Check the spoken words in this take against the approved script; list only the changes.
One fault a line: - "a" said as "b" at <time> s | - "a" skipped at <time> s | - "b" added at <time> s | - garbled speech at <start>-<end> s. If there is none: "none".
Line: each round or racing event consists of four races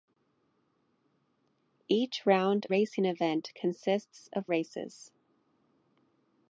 - "or" skipped at 2.6 s
- "four" skipped at 4.5 s